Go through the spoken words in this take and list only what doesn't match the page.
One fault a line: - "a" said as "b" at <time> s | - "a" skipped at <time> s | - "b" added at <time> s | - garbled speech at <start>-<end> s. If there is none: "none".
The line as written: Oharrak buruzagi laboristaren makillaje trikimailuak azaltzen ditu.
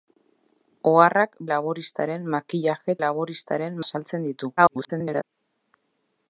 - "buruzagi" skipped at 1.4 s
- "trikimailuak" said as "laboristaren" at 3.0 s
- garbled speech at 4.6-5.2 s